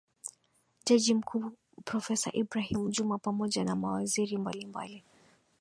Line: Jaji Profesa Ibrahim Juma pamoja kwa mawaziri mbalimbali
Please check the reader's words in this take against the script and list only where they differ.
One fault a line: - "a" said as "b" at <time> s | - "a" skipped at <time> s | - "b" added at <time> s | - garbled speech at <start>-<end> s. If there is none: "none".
- "mkuu" added at 1.1 s
- "kwa" said as "na" at 3.6 s